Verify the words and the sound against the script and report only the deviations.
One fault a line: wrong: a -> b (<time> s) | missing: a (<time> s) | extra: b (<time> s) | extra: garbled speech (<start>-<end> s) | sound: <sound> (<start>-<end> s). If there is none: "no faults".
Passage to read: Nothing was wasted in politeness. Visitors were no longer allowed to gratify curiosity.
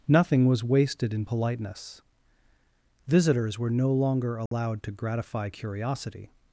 sound: dropout (4.5-4.5 s)